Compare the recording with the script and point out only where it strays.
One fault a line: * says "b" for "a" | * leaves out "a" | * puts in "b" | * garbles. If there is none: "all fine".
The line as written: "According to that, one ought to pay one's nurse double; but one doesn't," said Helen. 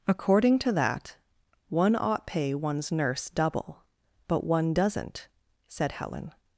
* leaves out "to"